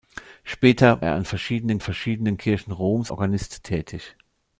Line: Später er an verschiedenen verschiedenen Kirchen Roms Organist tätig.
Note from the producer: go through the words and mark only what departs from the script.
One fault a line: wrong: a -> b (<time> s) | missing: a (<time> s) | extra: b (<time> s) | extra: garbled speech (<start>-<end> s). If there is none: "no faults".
no faults